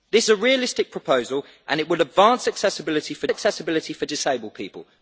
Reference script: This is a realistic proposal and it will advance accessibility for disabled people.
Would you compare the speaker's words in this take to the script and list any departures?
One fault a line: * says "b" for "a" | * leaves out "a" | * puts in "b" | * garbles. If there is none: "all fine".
* leaves out "is"
* puts in "accessibility for"